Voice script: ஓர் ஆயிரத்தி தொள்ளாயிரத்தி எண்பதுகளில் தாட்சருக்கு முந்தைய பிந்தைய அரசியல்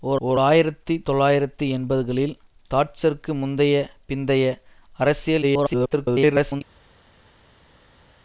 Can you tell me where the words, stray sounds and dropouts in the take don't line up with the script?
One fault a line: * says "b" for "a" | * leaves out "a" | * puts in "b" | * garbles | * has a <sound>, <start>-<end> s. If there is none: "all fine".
* puts in "ஓர்"
* garbles